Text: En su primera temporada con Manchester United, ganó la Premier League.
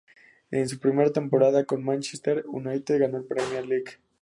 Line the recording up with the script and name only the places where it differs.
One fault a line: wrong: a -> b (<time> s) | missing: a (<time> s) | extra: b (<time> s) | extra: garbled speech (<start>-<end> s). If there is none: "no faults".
no faults